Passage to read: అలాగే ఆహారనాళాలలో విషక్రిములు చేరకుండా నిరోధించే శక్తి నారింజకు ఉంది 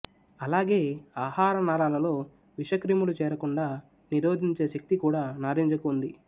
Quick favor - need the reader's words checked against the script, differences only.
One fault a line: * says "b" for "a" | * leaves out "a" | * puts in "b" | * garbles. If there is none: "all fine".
* puts in "కూడా"